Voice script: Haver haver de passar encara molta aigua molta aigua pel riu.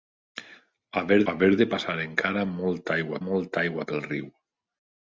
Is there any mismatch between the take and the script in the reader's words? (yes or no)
no